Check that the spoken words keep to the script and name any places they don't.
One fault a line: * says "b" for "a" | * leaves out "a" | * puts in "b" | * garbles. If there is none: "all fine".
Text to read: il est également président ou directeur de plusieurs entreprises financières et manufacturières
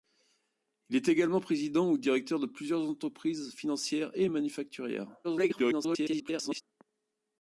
* garbles